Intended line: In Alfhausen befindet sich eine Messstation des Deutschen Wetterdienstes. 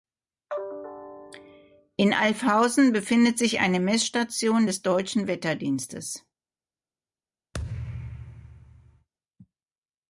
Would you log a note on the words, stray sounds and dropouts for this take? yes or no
yes